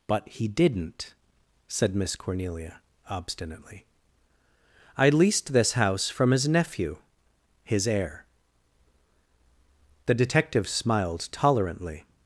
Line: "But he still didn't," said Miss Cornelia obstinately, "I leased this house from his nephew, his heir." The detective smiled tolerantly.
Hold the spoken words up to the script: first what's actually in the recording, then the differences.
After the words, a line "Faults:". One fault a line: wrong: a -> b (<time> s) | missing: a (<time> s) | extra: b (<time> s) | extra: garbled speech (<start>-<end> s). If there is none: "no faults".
"But he didn't," said Miss Cornelia obstinately, "I leased this house from his nephew, his heir." The detective smiled tolerantly.
Faults:
missing: still (0.5 s)